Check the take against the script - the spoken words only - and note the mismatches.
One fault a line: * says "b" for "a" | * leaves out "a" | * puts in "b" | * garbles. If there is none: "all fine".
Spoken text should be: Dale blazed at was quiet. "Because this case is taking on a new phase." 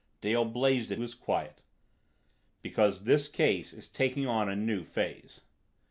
all fine